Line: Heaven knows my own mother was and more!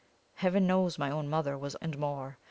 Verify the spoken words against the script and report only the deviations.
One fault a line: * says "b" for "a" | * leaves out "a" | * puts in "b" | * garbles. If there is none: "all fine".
all fine